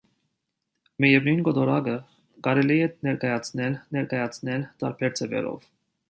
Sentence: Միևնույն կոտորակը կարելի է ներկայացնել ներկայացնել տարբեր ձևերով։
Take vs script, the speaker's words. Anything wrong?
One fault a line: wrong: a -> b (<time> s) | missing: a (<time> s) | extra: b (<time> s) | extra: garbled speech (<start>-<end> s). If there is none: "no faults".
no faults